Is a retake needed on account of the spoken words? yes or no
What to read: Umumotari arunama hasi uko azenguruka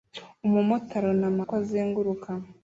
yes